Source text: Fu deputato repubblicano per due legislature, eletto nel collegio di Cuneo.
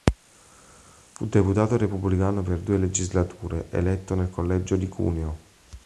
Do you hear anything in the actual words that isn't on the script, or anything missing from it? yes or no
no